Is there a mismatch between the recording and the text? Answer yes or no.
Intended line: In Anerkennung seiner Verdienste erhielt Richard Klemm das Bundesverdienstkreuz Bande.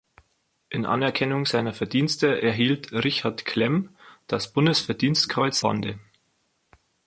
no